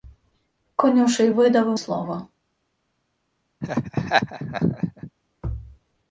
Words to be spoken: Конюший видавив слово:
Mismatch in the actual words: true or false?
false